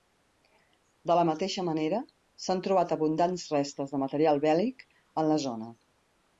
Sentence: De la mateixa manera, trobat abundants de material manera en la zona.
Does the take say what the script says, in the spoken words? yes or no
no